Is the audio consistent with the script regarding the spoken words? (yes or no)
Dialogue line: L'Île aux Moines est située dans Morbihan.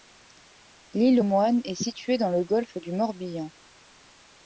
no